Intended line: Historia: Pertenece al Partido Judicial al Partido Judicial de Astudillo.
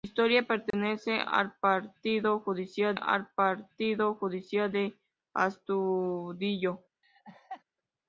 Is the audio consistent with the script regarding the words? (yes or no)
yes